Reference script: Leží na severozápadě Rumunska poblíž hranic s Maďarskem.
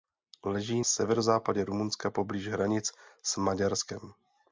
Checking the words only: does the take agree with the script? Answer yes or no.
no